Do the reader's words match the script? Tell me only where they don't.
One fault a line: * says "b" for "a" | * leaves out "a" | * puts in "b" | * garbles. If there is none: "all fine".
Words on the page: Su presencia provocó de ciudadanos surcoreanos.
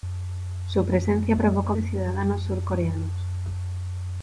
all fine